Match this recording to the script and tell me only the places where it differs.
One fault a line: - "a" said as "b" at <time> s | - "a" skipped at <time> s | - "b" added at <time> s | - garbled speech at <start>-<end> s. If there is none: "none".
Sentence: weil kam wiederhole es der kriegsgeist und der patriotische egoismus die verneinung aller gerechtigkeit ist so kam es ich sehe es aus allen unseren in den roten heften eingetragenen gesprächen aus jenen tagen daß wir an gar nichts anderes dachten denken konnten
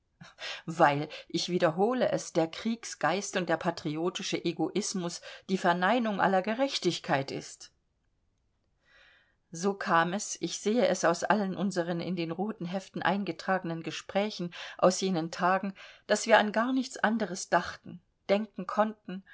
- "kam" said as "ich" at 1.3 s